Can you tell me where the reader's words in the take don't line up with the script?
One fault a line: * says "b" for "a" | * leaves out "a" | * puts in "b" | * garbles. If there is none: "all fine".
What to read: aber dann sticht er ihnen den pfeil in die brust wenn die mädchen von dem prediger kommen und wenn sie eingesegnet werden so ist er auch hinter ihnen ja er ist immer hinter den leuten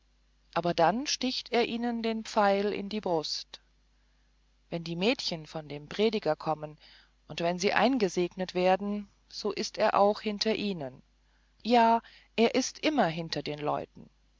all fine